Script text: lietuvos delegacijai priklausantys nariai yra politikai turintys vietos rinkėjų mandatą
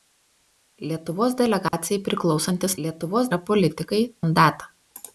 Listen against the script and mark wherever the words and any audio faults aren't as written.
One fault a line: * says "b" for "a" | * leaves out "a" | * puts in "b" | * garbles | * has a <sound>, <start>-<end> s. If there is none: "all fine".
* has a dropout, 1.7-1.7 s
* says "lietuvos" for "nariai"
* leaves out "turintys vietos rinkėjų"